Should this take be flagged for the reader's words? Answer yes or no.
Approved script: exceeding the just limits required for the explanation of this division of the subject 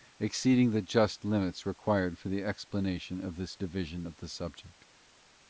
no